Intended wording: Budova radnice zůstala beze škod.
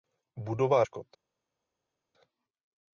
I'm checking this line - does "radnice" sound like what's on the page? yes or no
no